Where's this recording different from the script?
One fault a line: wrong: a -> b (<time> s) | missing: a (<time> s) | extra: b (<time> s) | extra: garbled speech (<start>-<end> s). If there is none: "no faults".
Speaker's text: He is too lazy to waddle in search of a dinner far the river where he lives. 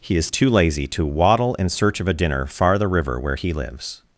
no faults